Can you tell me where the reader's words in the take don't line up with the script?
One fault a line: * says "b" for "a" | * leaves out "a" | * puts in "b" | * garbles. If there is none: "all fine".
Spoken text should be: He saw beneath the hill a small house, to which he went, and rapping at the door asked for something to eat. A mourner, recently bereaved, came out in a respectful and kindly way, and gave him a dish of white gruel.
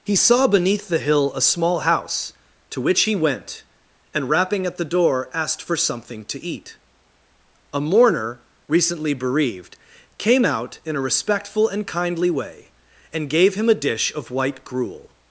all fine